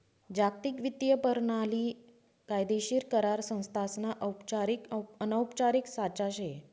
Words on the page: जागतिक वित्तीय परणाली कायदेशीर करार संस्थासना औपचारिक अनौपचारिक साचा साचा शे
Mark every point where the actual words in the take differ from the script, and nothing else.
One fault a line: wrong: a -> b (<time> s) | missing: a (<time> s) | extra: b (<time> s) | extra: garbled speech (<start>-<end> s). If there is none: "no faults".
missing: साचा (6.3 s)